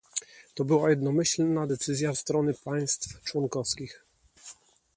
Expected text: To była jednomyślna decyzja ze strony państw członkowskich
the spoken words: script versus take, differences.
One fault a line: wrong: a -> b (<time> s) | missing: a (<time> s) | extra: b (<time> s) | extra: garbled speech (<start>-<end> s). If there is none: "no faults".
missing: ze (2.1 s)